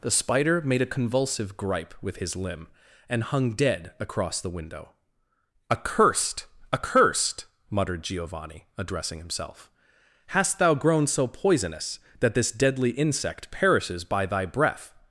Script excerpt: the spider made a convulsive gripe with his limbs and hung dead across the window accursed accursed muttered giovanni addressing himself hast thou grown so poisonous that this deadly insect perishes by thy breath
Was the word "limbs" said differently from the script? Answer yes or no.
yes